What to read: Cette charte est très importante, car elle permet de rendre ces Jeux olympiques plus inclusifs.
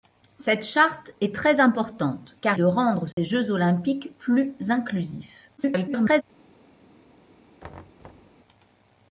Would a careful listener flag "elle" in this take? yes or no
yes